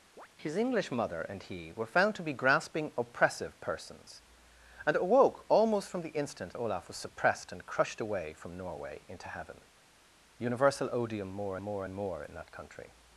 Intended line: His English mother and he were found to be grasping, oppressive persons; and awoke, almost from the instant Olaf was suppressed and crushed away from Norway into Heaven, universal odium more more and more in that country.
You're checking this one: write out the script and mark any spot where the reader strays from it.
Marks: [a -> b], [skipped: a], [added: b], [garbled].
His English mother and he were found to be grasping, oppressive persons; and awoke, almost from the instant Olaf was suppressed and crushed away from Norway into Heaven, universal odium more more and more in that country.